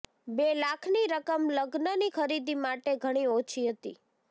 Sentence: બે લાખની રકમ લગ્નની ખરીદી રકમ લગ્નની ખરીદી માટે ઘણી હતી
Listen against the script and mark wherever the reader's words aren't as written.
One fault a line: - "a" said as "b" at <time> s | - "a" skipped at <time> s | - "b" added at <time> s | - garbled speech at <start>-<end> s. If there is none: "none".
- "રકમ લગ્નની ખરીદી" skipped at 2.6 s
- "ઓછી" added at 3.3 s